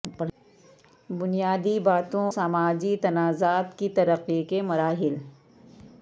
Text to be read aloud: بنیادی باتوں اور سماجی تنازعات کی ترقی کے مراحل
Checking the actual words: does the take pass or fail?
fail